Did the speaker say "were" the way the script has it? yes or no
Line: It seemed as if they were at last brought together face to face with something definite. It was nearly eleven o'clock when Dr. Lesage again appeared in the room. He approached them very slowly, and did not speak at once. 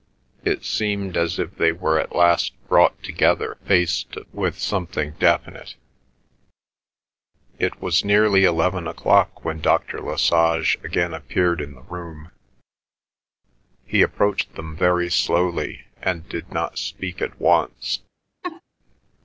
yes